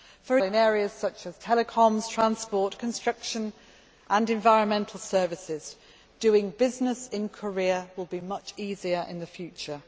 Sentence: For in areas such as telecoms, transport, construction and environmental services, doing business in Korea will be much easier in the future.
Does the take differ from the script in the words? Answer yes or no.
no